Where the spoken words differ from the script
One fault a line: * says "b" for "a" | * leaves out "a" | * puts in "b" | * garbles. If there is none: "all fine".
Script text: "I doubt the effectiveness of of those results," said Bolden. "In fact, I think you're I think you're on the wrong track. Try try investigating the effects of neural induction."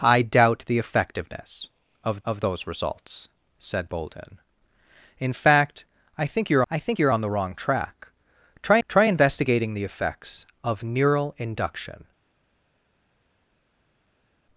all fine